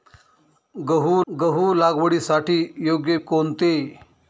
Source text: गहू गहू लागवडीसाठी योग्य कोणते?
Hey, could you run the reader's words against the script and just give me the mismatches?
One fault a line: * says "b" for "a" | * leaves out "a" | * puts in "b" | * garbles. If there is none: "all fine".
all fine